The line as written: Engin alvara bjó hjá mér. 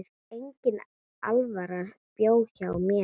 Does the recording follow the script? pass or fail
pass